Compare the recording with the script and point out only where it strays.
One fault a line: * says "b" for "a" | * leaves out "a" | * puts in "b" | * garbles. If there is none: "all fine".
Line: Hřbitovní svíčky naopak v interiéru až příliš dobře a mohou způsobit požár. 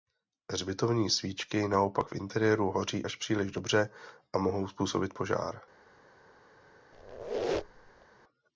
* puts in "hoří"